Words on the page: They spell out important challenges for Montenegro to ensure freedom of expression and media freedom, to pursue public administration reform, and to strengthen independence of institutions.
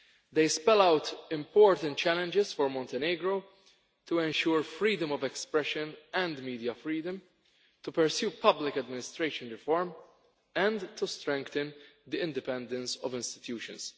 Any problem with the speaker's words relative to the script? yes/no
yes